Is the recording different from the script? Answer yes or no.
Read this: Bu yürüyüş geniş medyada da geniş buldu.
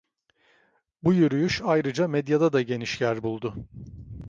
yes